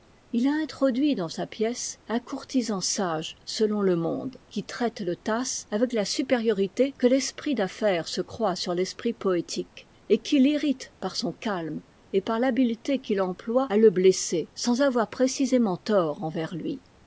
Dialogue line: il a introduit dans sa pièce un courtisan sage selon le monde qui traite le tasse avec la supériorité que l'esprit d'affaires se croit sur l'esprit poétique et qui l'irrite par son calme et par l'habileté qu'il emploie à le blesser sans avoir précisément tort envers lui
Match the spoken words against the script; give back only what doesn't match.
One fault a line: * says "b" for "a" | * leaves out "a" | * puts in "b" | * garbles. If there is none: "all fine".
all fine